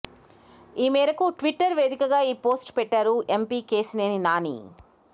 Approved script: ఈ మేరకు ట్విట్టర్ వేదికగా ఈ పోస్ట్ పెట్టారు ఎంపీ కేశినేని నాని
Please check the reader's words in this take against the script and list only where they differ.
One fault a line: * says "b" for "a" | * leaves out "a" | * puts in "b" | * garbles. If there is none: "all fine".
all fine